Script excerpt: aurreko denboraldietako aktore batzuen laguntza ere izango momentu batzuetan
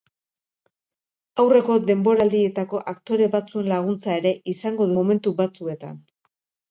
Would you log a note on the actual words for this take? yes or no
no